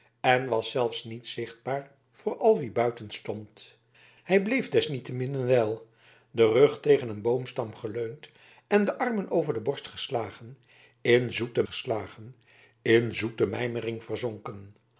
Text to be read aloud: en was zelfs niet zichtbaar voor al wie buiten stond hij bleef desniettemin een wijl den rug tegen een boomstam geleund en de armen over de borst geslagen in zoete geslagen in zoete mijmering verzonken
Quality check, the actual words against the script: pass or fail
pass